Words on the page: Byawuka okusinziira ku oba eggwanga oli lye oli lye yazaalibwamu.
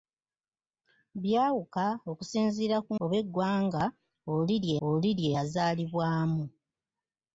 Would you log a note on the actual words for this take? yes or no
no